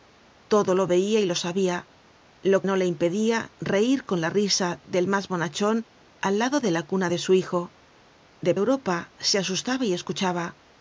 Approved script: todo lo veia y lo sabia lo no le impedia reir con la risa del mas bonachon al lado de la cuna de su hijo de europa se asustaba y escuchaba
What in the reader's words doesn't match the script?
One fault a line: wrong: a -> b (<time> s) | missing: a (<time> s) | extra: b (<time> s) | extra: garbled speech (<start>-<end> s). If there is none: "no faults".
no faults